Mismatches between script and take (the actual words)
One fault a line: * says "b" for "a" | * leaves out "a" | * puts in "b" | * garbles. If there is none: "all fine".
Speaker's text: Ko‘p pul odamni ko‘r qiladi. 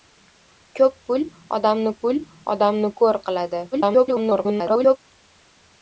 * puts in "pul odamni"
* garbles